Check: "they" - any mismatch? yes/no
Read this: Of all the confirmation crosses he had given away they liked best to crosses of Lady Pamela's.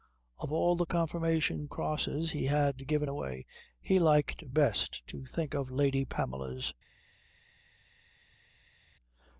yes